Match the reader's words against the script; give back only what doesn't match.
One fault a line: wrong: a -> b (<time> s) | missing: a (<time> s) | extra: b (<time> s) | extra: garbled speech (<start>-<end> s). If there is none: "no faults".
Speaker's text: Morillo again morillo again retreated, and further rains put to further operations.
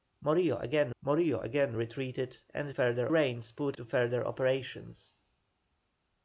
no faults